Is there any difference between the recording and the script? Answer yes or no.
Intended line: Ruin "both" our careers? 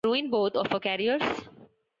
yes